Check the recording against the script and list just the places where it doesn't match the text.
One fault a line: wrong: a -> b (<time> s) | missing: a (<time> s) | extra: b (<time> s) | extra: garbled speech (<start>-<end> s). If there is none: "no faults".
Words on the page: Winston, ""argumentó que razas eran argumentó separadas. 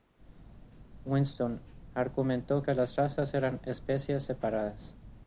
extra: las (2.7 s)
wrong: argumentó -> especies (3.6 s)